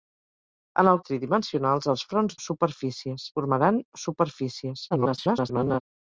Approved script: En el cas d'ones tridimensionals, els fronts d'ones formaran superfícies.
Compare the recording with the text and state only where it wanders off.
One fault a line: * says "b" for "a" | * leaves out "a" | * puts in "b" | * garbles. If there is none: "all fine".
* leaves out "cas d'ones"
* says "superfícies" for "d'ones"
* garbles